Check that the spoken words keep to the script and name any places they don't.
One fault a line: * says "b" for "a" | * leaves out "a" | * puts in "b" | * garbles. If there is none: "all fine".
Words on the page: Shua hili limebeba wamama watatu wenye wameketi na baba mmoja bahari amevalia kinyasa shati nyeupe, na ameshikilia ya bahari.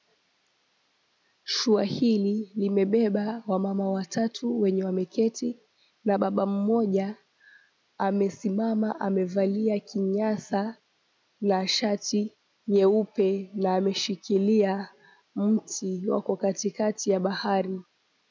* says "amesimama" for "bahari"
* puts in "na"
* puts in "mti wako katikati"